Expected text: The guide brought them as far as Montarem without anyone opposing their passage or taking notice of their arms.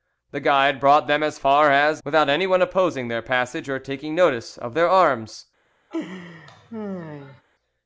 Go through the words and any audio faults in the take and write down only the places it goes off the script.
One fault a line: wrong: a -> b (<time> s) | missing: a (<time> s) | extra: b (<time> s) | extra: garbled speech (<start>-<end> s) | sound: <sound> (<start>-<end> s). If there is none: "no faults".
missing: Montarem (2.0 s)
sound: laugh (5.9-7.4 s)